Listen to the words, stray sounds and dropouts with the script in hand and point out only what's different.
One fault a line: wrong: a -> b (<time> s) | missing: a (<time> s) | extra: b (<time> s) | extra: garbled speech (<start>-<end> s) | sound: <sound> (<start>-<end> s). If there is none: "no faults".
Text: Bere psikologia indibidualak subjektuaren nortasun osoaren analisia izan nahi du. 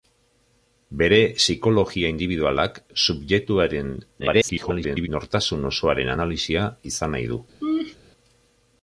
extra: garbled speech (4.2-5.1 s)
sound: laugh (7.6-8.0 s)